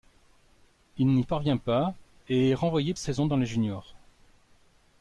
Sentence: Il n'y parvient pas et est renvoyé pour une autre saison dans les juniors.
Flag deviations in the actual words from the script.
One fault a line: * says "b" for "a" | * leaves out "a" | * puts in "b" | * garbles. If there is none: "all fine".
* leaves out "pour une autre"